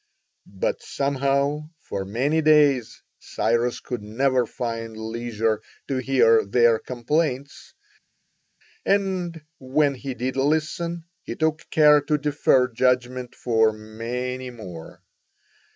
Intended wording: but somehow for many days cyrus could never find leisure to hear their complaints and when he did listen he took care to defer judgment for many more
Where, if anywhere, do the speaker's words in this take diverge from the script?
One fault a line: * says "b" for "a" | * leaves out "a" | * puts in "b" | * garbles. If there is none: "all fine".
all fine